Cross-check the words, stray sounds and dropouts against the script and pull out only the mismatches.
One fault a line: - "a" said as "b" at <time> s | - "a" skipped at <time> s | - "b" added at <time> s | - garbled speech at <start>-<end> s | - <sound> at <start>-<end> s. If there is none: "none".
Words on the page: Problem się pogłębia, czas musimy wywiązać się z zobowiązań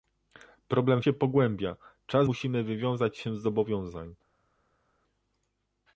none